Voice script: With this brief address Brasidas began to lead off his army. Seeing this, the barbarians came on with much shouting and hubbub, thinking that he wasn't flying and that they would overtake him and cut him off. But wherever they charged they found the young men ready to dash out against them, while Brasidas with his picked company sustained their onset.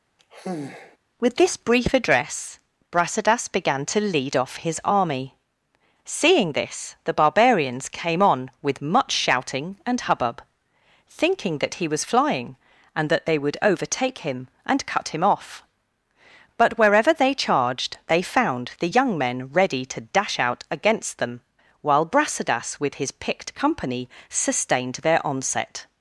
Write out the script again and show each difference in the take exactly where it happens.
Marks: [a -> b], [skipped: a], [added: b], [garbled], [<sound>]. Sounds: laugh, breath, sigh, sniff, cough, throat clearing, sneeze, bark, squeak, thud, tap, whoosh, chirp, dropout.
[sigh] With this brief address Brasidas began to lead off his army. Seeing this, the barbarians came on with much shouting and hubbub, thinking that he [wasn't -> was] flying and that they would overtake him and cut him off. But wherever they charged they found the young men ready to dash out against them, while Brasidas with his picked company sustained their onset.